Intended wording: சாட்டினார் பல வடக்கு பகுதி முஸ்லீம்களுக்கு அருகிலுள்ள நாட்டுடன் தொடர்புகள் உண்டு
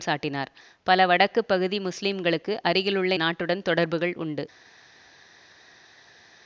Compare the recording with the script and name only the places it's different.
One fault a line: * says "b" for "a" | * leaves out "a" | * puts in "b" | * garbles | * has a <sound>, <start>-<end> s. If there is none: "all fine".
all fine